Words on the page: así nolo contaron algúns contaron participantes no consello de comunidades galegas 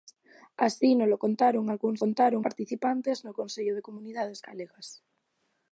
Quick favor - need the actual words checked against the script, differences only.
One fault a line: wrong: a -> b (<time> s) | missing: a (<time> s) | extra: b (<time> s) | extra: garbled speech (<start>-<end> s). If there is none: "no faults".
no faults